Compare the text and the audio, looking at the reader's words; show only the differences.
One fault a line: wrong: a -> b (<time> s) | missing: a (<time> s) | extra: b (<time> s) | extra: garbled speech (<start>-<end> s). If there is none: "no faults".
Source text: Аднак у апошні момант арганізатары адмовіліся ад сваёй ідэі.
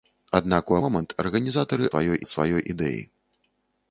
missing: апошні (0.8 s)
wrong: адмовіліся -> сваёй (1.9 s)